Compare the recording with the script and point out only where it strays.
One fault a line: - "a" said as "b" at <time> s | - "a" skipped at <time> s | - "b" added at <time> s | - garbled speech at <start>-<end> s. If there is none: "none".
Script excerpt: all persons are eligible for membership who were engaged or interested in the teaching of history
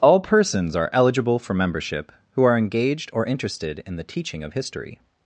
- "were" said as "are" at 2.4 s